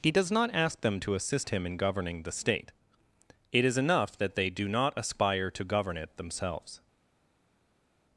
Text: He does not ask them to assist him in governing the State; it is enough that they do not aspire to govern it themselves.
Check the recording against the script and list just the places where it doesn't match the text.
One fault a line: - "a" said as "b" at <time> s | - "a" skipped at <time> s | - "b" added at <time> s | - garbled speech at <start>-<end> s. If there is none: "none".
none